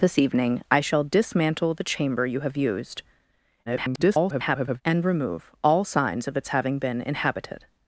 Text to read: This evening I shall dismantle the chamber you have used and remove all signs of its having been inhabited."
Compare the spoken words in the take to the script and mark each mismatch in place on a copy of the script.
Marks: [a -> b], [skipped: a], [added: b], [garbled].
This evening I shall dismantle the chamber you have used [garbled] and remove all signs of its having been inhabited."